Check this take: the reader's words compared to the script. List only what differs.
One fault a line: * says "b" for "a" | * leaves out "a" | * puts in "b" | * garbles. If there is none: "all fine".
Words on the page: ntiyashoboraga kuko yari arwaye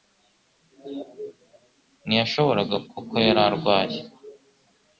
all fine